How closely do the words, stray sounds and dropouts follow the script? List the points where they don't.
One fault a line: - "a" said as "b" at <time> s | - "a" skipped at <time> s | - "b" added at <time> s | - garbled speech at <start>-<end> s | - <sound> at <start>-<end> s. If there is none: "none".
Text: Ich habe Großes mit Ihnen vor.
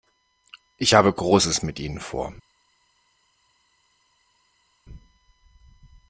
none